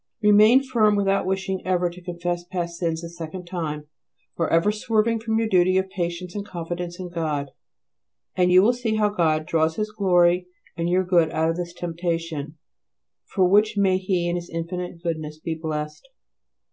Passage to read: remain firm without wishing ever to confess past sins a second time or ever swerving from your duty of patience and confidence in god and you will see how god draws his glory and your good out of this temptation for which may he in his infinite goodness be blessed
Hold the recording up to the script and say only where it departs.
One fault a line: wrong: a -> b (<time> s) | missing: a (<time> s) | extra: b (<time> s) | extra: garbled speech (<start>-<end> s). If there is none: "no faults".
no faults